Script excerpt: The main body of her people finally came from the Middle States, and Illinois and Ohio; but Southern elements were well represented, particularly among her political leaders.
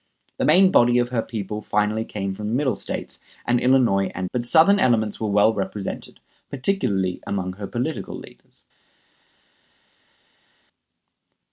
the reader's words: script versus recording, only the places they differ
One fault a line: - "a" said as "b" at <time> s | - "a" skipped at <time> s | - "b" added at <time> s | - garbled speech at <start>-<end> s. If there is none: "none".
- "Ohio" skipped at 4.3 s